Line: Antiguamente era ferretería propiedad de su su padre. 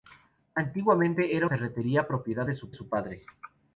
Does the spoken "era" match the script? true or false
true